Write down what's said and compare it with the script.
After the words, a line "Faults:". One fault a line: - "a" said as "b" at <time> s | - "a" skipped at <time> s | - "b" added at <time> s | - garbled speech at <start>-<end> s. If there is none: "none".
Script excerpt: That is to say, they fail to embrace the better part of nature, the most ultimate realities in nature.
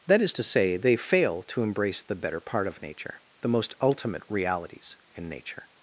That is to say, they fail to embrace the better part of nature, the most ultimate realities in nature.
Faults:
none